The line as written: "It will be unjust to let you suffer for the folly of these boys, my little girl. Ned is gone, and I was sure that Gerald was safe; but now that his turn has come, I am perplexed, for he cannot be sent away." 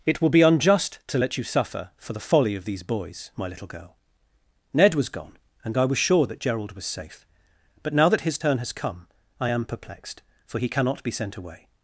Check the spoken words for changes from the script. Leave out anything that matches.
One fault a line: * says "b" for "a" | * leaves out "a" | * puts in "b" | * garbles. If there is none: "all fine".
* says "was" for "is"